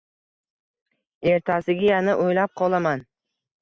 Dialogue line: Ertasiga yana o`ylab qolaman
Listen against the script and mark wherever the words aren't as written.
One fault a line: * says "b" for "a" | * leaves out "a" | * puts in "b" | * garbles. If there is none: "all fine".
all fine